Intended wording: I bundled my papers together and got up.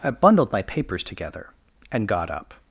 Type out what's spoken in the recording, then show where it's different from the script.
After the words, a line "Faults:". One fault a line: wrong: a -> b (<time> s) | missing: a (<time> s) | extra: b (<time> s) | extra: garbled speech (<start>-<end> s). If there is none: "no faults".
I bundled my papers together and got up.
Faults:
no faults